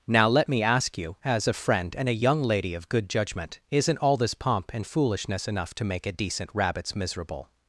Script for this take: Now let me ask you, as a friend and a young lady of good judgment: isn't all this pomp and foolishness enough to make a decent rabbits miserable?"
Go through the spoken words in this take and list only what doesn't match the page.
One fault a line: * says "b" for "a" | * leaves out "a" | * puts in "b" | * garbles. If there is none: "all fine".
all fine